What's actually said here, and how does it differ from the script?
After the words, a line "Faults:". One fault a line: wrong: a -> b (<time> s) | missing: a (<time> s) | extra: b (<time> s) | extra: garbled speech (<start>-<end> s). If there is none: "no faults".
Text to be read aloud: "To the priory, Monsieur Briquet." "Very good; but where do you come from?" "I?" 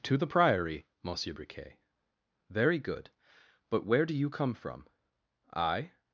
"To the priory, Monsieur Briquet." "Very good; but where do you come from?" "I?"
Faults:
no faults